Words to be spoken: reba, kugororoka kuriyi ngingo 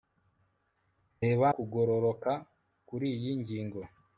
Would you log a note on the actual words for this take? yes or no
no